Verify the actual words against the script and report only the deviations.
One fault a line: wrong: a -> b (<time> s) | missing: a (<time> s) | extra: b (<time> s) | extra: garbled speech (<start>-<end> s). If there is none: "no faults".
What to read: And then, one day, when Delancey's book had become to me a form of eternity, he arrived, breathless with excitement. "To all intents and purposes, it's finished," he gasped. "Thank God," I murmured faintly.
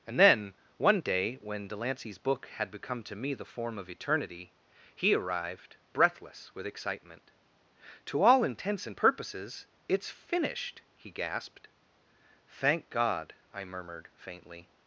wrong: a -> the (3.3 s)